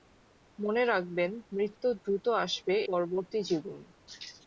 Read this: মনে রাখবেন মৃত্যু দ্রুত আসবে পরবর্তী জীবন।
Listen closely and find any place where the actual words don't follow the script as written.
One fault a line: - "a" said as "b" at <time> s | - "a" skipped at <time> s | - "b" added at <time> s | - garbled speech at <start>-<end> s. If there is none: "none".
none